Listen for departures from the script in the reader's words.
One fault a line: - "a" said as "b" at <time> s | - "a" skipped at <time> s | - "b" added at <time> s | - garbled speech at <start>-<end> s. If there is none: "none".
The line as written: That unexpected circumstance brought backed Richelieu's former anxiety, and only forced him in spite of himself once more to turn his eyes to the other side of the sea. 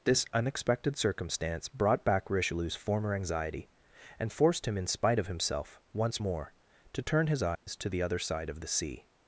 - "That" said as "This" at 0.0 s
- "backed" said as "back" at 2.0 s
- "only" skipped at 4.3 s